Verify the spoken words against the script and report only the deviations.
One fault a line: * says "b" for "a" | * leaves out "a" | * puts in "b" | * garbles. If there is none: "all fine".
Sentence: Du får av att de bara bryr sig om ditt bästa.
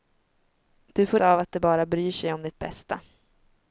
all fine